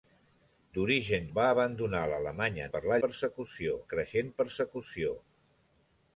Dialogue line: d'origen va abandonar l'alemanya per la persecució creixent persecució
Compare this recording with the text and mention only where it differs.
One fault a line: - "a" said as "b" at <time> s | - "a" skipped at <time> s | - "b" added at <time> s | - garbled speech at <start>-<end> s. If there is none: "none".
none